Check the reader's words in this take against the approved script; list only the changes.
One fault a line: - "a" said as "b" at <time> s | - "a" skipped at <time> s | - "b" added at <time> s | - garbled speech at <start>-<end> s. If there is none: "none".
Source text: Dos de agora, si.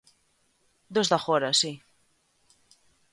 none